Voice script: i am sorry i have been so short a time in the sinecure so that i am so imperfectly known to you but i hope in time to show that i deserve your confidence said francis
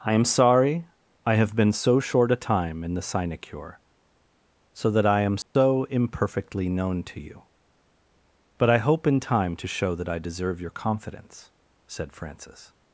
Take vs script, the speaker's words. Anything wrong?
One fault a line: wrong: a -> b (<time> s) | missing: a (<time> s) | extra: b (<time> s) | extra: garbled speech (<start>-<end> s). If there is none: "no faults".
no faults